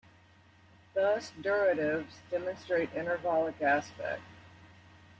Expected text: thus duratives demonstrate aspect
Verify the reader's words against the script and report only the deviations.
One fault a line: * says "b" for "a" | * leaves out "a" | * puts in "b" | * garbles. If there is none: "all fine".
* puts in "intervallic"